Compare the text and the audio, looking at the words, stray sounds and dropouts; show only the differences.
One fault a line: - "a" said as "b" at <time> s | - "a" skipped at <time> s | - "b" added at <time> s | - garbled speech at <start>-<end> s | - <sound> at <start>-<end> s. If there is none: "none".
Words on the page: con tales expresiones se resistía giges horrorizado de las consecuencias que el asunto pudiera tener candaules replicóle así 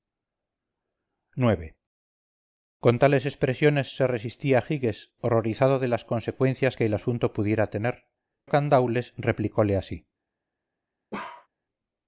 - bark at 11.1-11.5 s